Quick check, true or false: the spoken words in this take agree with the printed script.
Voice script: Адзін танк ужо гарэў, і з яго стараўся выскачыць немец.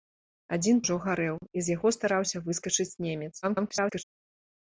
false